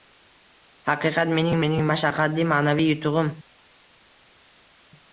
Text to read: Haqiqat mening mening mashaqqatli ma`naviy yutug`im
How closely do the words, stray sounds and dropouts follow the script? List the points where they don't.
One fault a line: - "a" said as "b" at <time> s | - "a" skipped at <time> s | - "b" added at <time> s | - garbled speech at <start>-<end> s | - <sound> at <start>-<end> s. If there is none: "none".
none